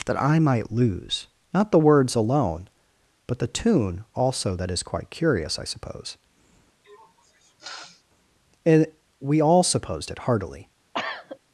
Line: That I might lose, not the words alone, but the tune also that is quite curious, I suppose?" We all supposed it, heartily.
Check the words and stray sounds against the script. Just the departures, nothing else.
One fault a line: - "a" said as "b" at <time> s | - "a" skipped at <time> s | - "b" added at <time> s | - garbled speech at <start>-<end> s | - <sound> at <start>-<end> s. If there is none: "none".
- sniff at 6.8-8.0 s
- "and" added at 8.6 s
- cough at 10.9-11.4 s